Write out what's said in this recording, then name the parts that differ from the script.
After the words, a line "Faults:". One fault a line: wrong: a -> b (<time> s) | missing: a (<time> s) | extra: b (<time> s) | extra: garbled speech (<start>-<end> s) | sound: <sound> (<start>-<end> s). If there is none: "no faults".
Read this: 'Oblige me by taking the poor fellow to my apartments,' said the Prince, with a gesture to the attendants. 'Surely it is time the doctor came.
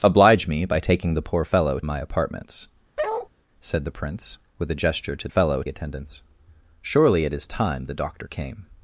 'Oblige me by taking the poor fellow my apartments,' said the Prince, with a gesture to fellow attendants. 'Surely it is time the doctor came.
Faults:
missing: to (1.8 s)
sound: bark (3.0-3.3 s)
wrong: the -> fellow (5.3 s)